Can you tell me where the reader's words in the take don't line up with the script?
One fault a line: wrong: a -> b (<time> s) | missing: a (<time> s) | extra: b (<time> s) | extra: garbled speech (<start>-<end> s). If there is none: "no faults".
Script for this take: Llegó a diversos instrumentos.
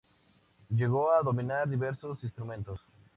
extra: dominar (1.2 s)